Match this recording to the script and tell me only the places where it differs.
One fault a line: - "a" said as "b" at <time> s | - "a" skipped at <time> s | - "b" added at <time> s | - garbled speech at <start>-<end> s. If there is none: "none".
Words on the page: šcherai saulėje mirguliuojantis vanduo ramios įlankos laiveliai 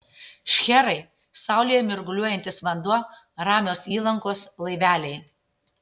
none